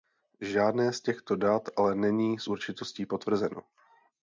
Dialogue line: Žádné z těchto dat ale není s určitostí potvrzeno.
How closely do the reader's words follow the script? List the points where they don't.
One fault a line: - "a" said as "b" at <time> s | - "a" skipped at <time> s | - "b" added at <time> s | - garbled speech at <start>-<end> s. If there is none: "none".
none